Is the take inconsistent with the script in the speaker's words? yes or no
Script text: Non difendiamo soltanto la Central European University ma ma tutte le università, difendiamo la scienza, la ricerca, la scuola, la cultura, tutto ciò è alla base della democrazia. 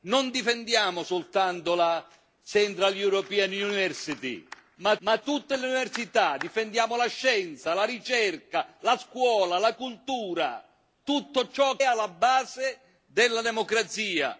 no